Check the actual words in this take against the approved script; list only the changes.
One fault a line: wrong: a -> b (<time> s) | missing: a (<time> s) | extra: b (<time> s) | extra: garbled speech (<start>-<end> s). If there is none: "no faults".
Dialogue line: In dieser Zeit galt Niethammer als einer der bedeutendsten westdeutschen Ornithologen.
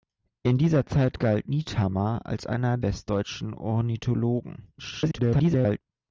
missing: der bedeutendsten (2.8 s)
extra: garbled speech (4.8-5.8 s)